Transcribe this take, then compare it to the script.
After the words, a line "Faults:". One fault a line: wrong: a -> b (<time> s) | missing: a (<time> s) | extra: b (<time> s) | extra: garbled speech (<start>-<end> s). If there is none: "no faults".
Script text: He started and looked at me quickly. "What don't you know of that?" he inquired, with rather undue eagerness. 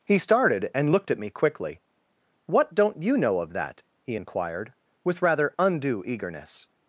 He started and looked at me quickly. "What don't you know of that?" he inquired, with rather undue eagerness.
Faults:
no faults